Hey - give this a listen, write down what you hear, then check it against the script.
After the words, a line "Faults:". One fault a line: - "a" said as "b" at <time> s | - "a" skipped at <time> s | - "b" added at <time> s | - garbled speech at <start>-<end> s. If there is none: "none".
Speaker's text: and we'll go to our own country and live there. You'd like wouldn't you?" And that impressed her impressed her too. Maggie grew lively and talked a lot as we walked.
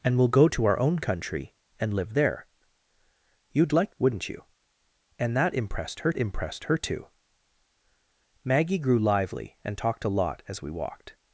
and we'll go to our own country and live there. You'd like wouldn't you?" And that impressed her impressed her too. Maggie grew lively and talked a lot as we walked.
Faults:
none